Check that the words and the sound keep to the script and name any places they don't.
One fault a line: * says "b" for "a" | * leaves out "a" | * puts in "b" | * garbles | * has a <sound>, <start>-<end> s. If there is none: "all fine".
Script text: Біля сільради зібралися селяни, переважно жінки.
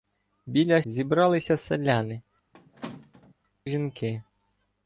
* leaves out "сільради"
* leaves out "переважно"
* has a squeak, 2.5-3.3 s